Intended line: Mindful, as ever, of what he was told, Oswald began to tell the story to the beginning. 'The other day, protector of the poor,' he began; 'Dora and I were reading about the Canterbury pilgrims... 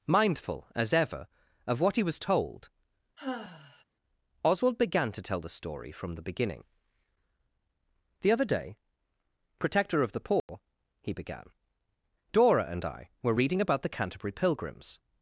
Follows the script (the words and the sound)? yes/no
no